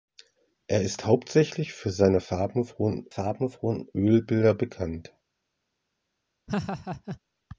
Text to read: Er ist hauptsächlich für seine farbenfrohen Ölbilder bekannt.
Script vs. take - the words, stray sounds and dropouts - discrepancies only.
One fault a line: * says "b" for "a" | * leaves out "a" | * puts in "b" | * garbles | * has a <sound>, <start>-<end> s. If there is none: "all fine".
* puts in "farbenfrohen"
* has a laugh, 6.5-7.2 s